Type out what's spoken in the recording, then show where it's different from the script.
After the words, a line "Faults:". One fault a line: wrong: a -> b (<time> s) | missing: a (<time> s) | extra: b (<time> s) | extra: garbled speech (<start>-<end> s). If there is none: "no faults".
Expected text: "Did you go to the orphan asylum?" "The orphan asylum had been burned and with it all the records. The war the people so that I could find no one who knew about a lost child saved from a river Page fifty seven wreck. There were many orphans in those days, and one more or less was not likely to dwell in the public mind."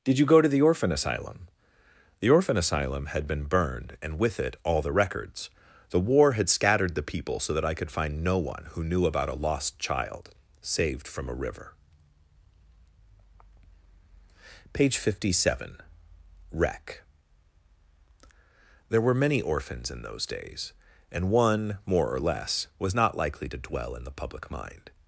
"Did you go to the orphan asylum?" "The orphan asylum had been burned and with it all the records. The war had scattered the people so that I could find no one who knew about a lost child saved from a river Page fifty seven wreck. There were many orphans in those days, and one more or less was not likely to dwell in the public mind."
Faults:
extra: had scattered (6.3 s)